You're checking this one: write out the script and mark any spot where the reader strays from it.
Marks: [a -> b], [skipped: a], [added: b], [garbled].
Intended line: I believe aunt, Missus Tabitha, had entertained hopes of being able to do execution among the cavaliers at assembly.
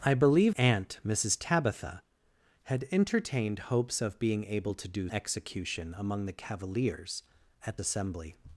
I believe aunt, Missus Tabitha, had entertained hopes of being able to do execution among the cavaliers at assembly.